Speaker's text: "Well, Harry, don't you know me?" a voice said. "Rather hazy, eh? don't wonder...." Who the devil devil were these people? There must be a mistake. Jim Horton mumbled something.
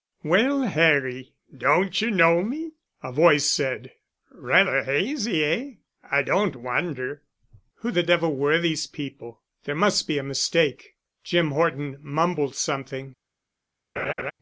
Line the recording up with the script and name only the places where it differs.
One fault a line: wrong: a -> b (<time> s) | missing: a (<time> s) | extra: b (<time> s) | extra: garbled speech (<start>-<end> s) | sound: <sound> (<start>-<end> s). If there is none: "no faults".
extra: I (6.1 s)
missing: devil (8.4 s)
sound: laugh (14.0-14.3 s)